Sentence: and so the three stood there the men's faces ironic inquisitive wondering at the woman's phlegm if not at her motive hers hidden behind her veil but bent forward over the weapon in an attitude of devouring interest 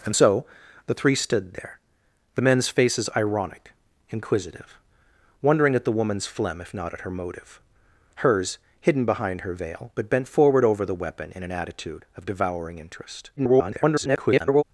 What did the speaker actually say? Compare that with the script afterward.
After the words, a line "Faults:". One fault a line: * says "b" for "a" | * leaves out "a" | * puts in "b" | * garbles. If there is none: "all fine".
and so the three stood there the men's faces ironic inquisitive wondering at the woman's phlegm if not at her motive hers hidden behind her veil but bent forward over the weapon in an attitude of devouring interest [garbled]
Faults:
* garbles